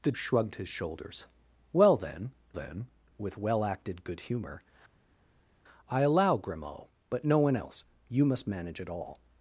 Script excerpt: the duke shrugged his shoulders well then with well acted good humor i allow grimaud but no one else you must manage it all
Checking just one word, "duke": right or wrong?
wrong